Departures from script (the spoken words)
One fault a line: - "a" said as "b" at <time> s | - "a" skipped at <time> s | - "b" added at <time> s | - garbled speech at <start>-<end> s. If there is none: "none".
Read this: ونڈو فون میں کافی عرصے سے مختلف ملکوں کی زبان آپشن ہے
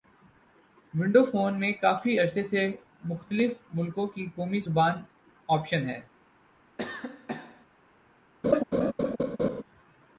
- "قومی" added at 4.3 s